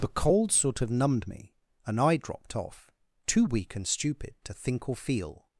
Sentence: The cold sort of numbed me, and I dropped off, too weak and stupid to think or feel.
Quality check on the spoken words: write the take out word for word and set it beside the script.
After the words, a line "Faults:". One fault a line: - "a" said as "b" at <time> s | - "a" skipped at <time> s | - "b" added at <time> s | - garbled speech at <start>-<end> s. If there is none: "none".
The cold sort of numbed me, and I dropped off, too weak and stupid to think or feel.
Faults:
none